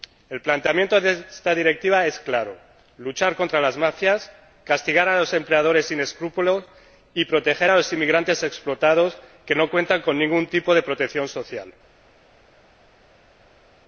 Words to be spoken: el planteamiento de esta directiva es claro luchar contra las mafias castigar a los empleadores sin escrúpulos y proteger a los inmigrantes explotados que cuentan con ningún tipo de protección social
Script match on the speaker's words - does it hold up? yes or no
no